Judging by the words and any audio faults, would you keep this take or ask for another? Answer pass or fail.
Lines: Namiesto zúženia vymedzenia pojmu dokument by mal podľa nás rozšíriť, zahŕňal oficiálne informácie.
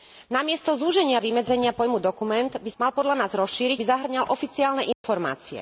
fail